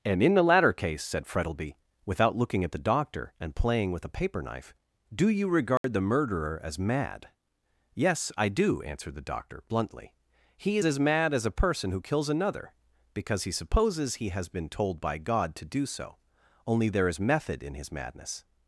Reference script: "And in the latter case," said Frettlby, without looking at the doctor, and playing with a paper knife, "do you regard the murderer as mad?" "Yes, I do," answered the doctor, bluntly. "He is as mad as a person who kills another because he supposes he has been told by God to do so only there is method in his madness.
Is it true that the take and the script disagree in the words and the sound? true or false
true